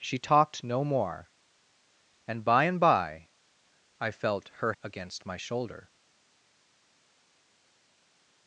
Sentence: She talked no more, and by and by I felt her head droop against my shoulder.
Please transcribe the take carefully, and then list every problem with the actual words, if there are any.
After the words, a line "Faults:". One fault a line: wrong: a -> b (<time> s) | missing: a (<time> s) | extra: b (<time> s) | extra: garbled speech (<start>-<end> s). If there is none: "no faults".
She talked no more, and by and by I felt her against my shoulder.
Faults:
missing: head droop (4.7 s)